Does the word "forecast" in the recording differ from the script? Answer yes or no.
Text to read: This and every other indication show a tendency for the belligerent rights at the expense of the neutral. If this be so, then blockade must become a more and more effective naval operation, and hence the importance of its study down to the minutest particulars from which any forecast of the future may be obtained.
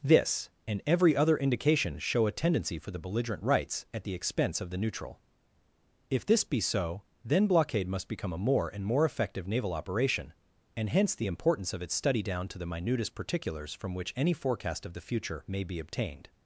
no